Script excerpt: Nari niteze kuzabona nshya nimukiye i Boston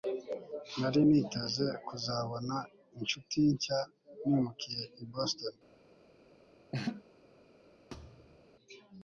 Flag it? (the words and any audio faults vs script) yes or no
yes